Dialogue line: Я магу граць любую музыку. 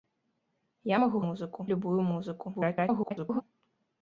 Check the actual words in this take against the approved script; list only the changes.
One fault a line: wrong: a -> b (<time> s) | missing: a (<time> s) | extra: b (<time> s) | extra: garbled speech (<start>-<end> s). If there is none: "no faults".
wrong: граць -> музыку (1.2 s)
extra: garbled speech (2.5-3.4 s)